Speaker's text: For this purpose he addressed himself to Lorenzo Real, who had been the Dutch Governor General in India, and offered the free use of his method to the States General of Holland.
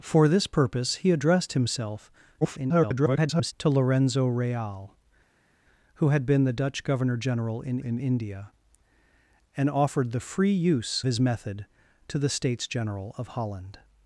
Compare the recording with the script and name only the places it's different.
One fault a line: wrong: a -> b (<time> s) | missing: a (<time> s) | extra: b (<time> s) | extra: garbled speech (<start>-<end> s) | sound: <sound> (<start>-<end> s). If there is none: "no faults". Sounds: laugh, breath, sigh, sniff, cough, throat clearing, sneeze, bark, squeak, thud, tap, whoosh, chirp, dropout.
extra: garbled speech (2.4-3.5 s)
extra: in (7.8 s)
missing: of (11.0 s)